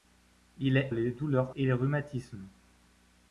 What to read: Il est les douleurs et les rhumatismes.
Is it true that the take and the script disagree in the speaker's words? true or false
false